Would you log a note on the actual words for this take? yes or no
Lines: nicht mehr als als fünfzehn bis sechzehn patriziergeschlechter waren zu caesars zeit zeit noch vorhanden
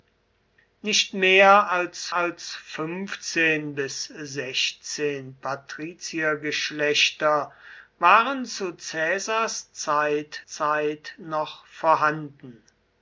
no